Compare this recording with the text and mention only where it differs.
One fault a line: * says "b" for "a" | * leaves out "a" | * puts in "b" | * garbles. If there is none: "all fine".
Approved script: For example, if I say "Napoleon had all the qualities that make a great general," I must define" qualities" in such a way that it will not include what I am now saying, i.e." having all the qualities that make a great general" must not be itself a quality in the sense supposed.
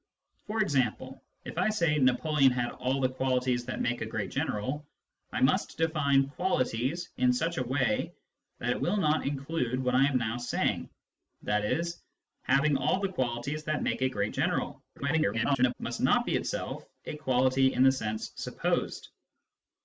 * garbles